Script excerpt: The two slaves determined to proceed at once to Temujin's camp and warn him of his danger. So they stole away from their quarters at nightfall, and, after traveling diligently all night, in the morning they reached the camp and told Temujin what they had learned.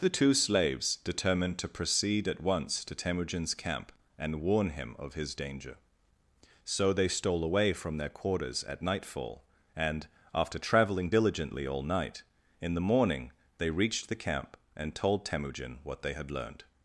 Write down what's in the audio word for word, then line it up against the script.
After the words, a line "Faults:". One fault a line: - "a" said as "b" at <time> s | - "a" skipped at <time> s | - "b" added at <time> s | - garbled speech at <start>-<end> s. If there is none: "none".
The two slaves determined to proceed at once to Temujin's camp and warn him of his danger. So they stole away from their quarters at nightfall, and, after traveling diligently all night, in the morning they reached the camp and told Temujin what they had learned.
Faults:
none